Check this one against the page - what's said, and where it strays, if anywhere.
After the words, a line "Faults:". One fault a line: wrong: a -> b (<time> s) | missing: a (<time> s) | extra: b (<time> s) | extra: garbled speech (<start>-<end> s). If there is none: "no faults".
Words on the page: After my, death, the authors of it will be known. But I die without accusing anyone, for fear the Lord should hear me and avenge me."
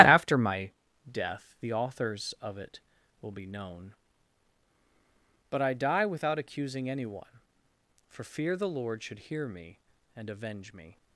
After my, death, the authors of it will be known. But I die without accusing anyone, for fear the Lord should hear me and avenge me."
Faults:
no faults